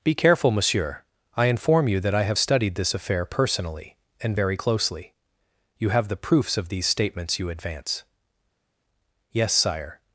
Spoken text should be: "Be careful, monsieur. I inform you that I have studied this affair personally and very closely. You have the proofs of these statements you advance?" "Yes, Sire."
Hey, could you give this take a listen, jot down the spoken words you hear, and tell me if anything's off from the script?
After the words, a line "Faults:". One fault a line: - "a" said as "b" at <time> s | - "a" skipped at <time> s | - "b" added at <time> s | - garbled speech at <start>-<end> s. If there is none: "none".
"Be careful, monsieur. I inform you that I have studied this affair personally and very closely. You have the proofs of these statements you advance?" "Yes, Sire."
Faults:
none